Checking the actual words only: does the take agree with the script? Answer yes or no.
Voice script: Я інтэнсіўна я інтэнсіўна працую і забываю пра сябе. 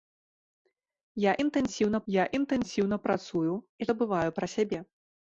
yes